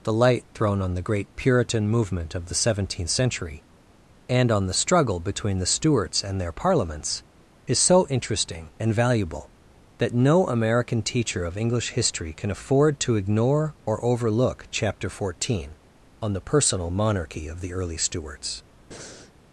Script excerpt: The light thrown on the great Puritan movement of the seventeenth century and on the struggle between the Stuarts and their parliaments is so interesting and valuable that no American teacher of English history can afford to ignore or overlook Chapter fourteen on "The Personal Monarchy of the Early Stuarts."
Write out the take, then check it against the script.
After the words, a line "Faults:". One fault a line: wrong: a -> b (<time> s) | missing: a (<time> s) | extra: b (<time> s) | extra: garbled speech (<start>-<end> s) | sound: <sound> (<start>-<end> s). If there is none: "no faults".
The light thrown on the great Puritan movement of the seventeenth century and on the struggle between the Stuarts and their parliaments is so interesting and valuable that no American teacher of English history can afford to ignore or overlook Chapter fourteen on "The Personal Monarchy of the Early Stuarts."
Faults:
sound: breath (18.9-19.3 s)